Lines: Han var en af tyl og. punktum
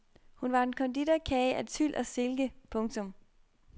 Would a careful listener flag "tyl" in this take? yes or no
no